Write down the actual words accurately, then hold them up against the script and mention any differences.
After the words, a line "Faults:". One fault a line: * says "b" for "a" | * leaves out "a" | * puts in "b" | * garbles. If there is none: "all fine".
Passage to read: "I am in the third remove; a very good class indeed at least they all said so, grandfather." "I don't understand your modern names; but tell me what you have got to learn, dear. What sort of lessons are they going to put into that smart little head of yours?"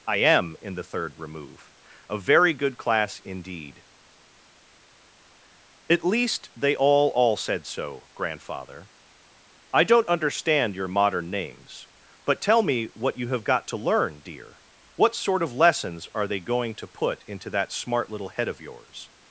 "I am in the third remove; a very good class indeed at least they all all said so, grandfather." "I don't understand your modern names; but tell me what you have got to learn, dear. What sort of lessons are they going to put into that smart little head of yours?"
Faults:
* puts in "all"